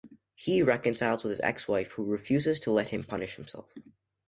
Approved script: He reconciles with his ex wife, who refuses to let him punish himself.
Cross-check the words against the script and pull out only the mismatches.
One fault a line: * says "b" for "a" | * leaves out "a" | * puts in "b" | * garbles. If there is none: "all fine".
all fine